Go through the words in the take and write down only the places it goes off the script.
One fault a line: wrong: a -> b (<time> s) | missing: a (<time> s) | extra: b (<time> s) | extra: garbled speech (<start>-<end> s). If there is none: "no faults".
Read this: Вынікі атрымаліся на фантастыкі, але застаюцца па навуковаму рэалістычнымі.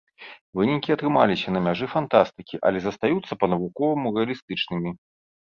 extra: мяжы (1.7 s)